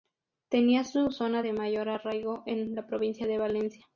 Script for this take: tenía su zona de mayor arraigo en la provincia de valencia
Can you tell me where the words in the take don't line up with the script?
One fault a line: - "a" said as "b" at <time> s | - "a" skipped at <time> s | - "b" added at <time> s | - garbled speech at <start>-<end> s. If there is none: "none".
none